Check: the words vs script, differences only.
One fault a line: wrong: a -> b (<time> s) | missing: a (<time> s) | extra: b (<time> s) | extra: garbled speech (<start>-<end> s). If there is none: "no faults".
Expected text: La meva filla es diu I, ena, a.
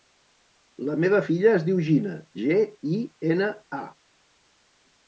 extra: Gina ge (1.9 s)